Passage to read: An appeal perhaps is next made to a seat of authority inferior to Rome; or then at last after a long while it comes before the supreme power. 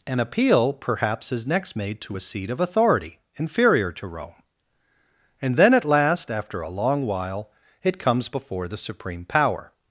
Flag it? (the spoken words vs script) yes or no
yes